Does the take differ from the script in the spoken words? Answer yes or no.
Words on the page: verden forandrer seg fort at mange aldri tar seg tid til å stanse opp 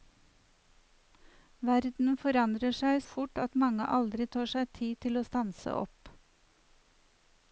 no